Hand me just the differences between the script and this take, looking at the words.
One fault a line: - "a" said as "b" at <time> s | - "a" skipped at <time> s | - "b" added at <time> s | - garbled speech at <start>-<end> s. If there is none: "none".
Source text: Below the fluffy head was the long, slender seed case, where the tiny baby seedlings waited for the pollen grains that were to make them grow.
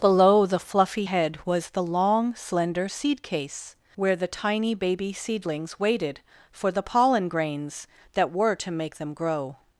none